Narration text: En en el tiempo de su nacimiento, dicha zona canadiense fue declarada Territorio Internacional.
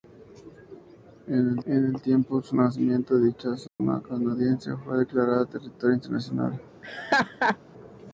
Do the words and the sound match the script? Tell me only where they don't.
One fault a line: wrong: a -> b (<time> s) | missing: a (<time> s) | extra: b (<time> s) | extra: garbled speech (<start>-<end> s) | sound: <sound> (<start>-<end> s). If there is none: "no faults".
sound: dropout (3.7-3.8 s)
sound: laugh (6.8-7.6 s)